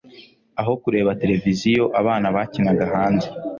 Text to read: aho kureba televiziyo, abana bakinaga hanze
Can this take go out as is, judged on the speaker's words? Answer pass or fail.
pass